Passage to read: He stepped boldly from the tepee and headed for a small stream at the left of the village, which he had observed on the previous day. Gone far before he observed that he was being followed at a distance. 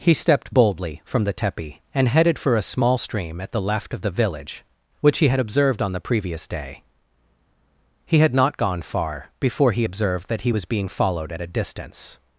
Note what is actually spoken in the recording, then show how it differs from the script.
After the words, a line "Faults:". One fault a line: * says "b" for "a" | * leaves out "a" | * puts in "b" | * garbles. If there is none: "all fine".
He stepped boldly from the tepee and headed for a small stream at the left of the village, which he had observed on the previous day. He had not gone far before he observed that he was being followed at a distance.
Faults:
* puts in "He had not"